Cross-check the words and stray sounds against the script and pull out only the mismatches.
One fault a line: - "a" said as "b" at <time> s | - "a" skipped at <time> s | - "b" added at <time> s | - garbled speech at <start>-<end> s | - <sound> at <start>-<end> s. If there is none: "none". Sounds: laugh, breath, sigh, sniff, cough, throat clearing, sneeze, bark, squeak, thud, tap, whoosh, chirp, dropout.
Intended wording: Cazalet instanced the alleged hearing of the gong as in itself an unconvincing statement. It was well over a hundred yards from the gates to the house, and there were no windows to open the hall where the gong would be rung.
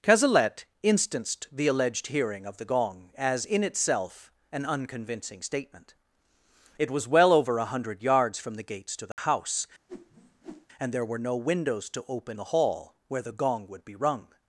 - dropout at 9.1-9.2 s
- whoosh at 9.9-10.7 s